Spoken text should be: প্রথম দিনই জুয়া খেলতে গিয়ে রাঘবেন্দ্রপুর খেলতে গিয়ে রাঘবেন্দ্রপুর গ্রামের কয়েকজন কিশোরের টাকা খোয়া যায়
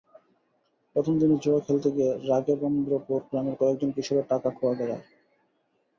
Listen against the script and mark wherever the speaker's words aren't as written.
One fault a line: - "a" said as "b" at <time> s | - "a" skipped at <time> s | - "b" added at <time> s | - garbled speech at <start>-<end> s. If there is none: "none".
- "খেলতে গিয়ে রাঘবেন্দ্রপুর" skipped at 3.2 s